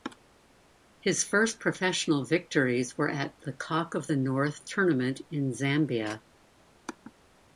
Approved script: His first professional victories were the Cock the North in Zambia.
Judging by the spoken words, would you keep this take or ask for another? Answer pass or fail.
fail